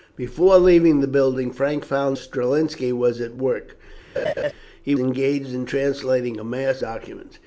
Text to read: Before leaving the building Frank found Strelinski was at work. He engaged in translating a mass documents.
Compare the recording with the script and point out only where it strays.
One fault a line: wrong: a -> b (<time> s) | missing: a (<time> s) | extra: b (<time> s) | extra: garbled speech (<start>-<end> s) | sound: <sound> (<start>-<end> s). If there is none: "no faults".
sound: laugh (4.1-4.5 s)